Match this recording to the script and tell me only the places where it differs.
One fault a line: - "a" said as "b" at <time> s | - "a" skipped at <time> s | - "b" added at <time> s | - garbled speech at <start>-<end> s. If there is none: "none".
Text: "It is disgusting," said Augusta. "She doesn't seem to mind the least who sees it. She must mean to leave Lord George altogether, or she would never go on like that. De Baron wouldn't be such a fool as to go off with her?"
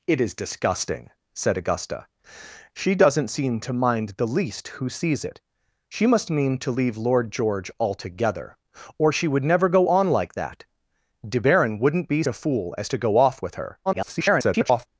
- "such" skipped at 12.2 s
- garbled speech at 13.9-14.9 s